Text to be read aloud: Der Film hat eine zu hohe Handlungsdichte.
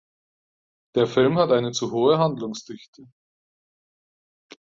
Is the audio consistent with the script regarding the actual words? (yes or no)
yes